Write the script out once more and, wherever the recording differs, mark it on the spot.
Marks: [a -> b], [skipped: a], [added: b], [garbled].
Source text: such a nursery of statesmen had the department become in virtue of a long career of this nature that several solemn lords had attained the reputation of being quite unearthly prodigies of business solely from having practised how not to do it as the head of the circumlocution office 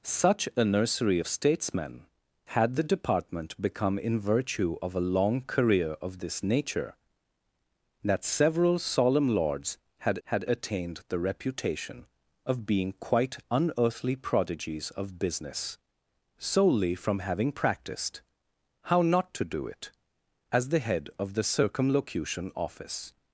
such a nursery of statesmen had the department become in virtue of a long career of this nature that several solemn lords had [added: had] attained the reputation of being quite unearthly prodigies of business solely from having practised how not to do it as the head of the circumlocution office